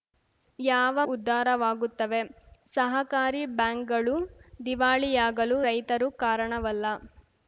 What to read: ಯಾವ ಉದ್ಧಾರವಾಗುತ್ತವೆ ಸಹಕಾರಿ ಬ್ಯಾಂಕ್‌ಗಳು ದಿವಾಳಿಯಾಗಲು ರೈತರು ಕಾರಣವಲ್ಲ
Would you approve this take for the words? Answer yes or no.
yes